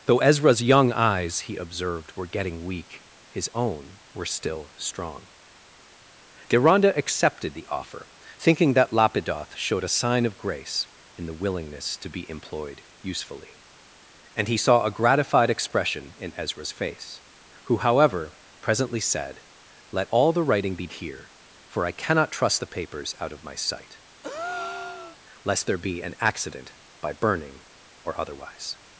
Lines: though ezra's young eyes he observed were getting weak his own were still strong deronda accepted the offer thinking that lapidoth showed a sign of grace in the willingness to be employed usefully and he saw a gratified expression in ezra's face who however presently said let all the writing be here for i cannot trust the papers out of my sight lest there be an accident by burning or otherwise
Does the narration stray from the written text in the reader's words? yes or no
no